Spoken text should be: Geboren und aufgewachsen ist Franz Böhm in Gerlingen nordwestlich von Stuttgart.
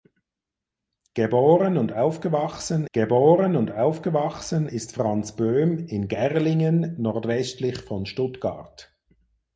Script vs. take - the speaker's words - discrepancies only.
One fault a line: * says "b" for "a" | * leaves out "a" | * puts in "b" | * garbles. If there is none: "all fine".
* puts in "geboren und aufgewachsen"